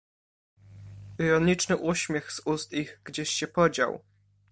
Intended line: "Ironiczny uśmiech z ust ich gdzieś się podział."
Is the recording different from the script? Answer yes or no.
no